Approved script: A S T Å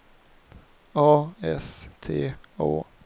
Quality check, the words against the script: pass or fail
pass